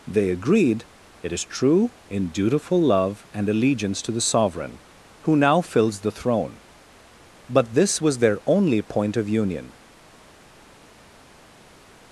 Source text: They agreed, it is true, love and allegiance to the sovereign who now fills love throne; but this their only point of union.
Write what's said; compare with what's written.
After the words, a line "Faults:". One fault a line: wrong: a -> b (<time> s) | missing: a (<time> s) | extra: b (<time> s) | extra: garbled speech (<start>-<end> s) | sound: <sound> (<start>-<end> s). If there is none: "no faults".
They agreed, it is true, in dutiful love and allegiance to the sovereign who now fills the throne; but this was their only point of union.
Faults:
extra: in dutiful (2.1 s)
wrong: love -> the (6.0 s)
extra: was (8.0 s)